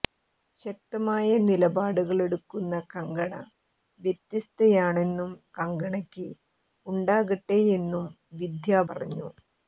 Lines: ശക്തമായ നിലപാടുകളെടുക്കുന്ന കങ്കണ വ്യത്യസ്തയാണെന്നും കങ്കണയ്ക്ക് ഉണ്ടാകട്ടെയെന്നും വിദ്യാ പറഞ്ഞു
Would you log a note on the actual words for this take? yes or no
no